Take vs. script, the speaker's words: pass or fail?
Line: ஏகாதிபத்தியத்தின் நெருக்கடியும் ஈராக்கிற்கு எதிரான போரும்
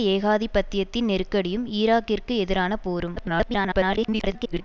fail